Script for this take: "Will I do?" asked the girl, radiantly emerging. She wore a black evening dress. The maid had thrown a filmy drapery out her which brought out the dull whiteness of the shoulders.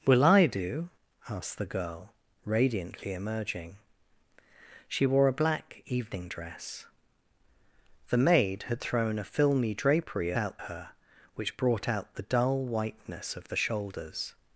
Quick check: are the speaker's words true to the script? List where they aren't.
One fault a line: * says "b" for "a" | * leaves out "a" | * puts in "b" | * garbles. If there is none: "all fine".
all fine